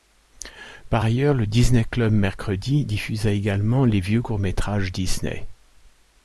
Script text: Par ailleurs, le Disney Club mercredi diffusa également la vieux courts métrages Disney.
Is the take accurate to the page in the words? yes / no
no